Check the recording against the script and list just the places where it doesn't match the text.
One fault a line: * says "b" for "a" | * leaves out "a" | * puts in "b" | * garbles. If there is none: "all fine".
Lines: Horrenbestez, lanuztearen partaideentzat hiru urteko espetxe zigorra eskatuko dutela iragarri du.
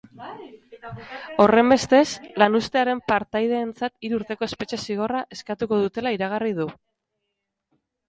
all fine